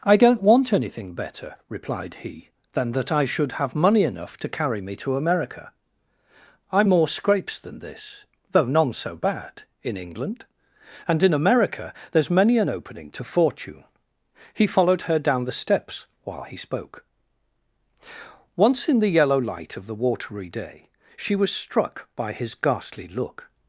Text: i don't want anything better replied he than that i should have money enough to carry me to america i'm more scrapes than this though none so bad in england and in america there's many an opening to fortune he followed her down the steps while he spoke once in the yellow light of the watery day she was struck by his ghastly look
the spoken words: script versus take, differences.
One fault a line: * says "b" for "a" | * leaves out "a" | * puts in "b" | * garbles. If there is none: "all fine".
all fine